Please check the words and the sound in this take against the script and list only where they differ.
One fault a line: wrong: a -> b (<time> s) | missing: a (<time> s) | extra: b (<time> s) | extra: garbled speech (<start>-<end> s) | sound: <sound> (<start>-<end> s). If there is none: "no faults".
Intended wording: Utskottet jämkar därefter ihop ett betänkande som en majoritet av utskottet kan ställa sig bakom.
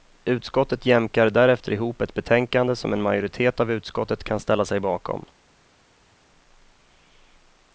no faults